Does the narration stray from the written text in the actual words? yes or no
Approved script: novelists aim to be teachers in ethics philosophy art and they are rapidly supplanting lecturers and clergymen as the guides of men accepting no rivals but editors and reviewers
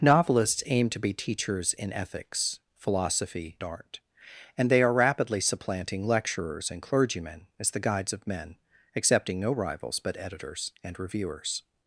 no